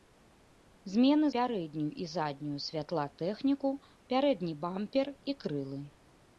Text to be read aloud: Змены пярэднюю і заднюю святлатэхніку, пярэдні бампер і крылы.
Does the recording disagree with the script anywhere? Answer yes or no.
no